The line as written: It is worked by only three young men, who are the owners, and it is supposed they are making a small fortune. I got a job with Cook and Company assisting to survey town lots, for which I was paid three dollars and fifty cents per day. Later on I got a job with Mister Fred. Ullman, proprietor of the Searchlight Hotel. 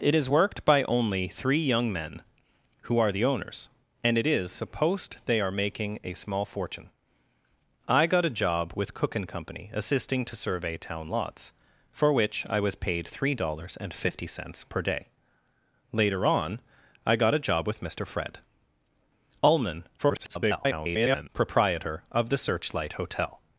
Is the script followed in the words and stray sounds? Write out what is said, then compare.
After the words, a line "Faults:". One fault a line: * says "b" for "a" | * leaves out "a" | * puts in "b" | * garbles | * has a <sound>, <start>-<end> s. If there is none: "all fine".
It is worked by only three young men, who are the owners, and it is supposed they are making a small fortune. I got a job with Cook and Company assisting to survey town lots, for which I was paid three dollars and fifty cents per day. Later on I got a job with Mister Fred. Ullman, [garbled] proprietor of the Searchlight Hotel.
Faults:
* garbles